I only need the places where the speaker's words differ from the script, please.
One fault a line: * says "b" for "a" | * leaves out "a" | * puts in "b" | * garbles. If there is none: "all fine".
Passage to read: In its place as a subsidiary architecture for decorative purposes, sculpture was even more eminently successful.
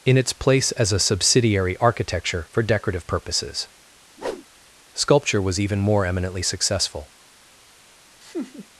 all fine